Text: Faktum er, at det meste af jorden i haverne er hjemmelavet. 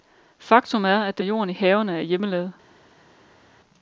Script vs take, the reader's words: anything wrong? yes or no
yes